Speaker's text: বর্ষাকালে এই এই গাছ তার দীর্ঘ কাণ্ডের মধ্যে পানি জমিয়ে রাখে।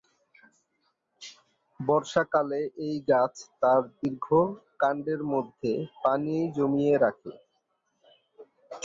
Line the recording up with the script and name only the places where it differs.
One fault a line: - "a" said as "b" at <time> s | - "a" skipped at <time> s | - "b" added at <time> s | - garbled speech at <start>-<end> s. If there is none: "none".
- "এই" skipped at 3.0 s